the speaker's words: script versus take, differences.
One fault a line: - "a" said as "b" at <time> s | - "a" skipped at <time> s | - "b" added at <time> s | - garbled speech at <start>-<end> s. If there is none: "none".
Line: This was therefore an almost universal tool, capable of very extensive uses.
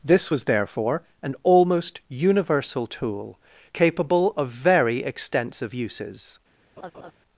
none